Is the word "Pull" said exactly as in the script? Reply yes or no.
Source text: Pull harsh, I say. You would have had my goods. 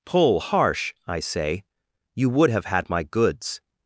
yes